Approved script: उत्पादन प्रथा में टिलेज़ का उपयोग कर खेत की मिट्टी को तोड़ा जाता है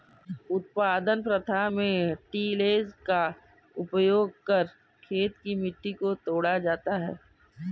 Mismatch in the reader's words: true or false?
false